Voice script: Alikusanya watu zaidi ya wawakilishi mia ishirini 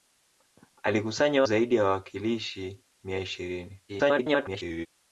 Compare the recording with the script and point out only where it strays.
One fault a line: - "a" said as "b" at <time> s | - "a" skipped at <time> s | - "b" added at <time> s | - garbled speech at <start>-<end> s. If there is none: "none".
- "watu" skipped at 1.4 s
- garbled speech at 3.9-4.9 s